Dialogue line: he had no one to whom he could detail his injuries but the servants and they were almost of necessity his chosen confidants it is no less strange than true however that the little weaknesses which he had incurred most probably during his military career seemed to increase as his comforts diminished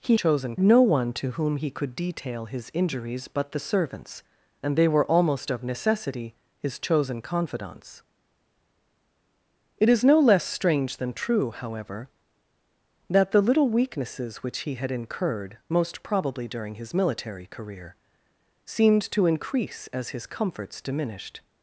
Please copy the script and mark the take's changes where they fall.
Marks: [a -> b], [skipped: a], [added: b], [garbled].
he [had -> chosen] no one to whom he could detail his injuries but the servants and they were almost of necessity his chosen confidants it is no less strange than true however that the little weaknesses which he had incurred most probably during his military career seemed to increase as his comforts diminished